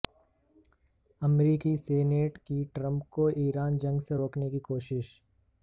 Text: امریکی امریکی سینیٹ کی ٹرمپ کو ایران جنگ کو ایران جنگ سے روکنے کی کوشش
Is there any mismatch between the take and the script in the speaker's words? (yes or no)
yes